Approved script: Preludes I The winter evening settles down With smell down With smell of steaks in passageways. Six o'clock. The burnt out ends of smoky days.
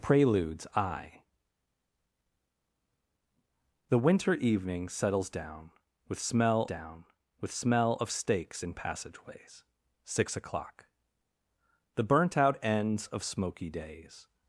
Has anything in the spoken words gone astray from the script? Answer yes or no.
no